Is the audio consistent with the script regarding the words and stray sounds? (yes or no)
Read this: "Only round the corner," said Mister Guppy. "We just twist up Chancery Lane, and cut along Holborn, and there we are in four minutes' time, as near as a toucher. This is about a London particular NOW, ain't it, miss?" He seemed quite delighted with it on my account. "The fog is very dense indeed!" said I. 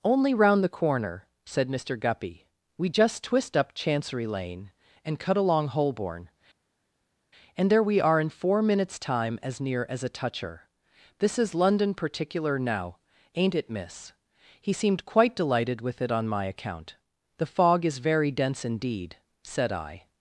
no